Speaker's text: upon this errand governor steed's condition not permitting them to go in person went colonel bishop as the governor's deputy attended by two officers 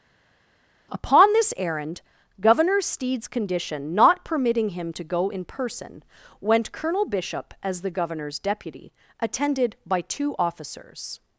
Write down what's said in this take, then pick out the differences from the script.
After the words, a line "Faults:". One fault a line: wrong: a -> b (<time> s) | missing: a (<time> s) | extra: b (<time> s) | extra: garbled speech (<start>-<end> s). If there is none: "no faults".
upon this errand governor steed's condition not permitting him to go in person went colonel bishop as the governor's deputy attended by two officers
Faults:
wrong: them -> him (4.7 s)